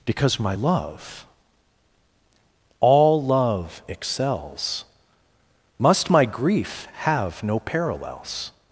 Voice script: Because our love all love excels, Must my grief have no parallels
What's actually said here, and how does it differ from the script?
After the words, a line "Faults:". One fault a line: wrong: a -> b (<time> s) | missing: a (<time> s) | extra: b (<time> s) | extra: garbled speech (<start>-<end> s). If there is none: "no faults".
Because my love all love excels, Must my grief have no parallels
Faults:
wrong: our -> my (0.4 s)